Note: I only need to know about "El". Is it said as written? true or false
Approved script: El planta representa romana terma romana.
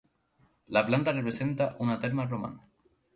false